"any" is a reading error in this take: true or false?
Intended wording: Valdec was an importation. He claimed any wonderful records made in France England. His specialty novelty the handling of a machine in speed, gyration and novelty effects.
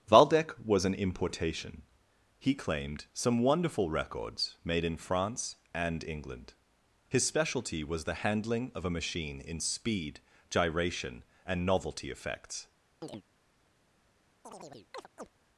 true